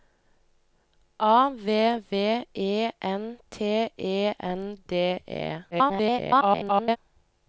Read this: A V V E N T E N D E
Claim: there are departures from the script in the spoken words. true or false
true